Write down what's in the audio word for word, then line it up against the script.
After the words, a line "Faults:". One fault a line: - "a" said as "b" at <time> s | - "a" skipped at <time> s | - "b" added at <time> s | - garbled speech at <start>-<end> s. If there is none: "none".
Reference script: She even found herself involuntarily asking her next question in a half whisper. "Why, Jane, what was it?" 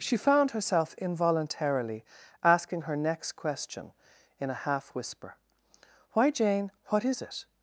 She found herself involuntarily asking her next question in a half whisper. "Why, Jane, what is it?"
Faults:
- "even" skipped at 0.2 s
- "was" said as "is" at 7.0 s